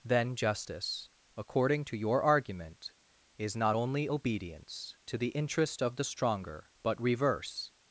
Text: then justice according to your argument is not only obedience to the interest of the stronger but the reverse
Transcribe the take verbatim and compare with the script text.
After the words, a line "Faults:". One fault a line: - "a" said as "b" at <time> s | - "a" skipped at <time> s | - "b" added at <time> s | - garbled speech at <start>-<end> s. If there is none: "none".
then justice according to your argument is not only obedience to the interest of the stronger but reverse
Faults:
- "the" skipped at 7.0 s